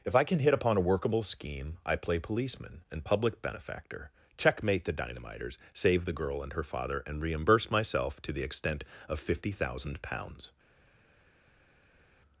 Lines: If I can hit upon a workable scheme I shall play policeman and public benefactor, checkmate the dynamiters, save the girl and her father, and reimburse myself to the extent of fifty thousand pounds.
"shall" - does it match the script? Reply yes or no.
no